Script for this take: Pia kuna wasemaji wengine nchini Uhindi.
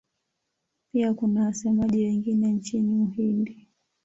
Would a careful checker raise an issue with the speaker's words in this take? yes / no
no